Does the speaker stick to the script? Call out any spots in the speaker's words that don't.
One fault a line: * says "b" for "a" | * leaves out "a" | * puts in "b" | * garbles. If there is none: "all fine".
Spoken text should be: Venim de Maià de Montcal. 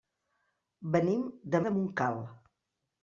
* leaves out "Maià"